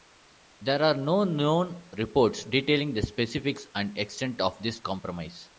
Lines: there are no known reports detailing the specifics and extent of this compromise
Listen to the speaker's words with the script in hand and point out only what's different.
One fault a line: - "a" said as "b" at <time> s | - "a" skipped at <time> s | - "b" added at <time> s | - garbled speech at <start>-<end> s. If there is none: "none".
none